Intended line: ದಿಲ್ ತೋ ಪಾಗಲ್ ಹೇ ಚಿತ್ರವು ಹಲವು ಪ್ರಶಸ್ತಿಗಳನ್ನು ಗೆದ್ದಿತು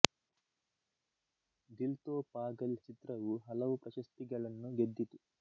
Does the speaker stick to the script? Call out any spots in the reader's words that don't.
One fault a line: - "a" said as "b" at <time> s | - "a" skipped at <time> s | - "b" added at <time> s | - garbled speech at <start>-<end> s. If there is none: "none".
- "ಹೇ" skipped at 2.8 s